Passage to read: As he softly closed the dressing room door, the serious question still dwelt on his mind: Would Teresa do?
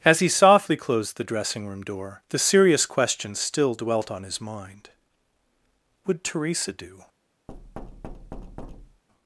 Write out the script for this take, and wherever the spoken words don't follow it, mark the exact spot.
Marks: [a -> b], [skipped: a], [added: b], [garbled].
As he softly closed the dressing room door, the serious question still dwelt on his mind: Would Teresa do?